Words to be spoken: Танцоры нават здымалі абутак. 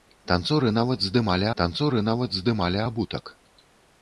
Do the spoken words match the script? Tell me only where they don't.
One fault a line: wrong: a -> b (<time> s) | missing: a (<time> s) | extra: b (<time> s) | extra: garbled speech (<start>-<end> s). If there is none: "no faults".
extra: танцоры нават здымалі (1.6 s)